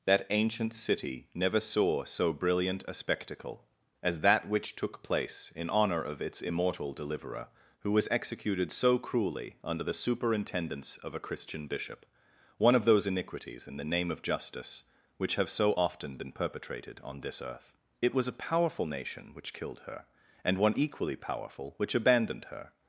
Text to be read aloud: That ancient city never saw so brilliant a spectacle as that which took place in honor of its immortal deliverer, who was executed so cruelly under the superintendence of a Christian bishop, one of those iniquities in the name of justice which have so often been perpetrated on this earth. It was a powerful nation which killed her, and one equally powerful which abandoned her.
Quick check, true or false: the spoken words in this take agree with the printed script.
true